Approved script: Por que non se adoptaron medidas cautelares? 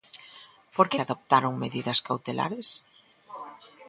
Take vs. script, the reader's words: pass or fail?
fail